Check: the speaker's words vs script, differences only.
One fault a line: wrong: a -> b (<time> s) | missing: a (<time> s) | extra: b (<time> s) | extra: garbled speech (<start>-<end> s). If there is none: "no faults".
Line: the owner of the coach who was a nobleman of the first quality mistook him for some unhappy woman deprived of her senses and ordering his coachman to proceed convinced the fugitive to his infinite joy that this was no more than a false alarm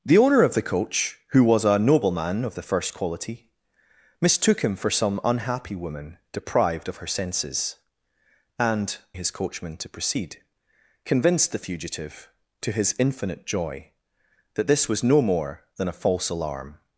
missing: ordering (9.0 s)